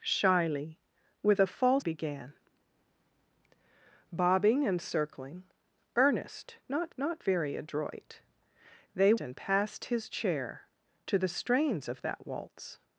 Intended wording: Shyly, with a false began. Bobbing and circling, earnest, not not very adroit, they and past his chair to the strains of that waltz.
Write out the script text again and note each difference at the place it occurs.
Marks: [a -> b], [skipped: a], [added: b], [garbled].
Shyly, with a false began. Bobbing and circling, earnest, not not very adroit, they and past his chair to the strains of that waltz.